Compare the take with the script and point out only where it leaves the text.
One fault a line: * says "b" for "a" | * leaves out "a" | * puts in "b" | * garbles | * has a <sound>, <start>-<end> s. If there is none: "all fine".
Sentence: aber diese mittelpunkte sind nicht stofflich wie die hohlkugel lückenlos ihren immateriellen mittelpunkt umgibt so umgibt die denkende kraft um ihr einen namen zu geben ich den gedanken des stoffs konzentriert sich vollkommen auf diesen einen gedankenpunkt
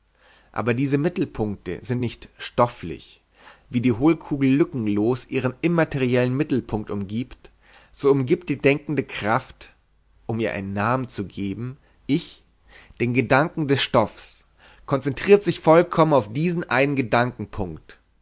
all fine